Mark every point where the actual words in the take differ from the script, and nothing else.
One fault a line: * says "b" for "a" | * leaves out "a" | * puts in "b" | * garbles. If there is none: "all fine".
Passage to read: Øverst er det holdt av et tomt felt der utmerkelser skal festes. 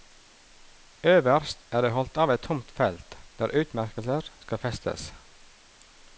all fine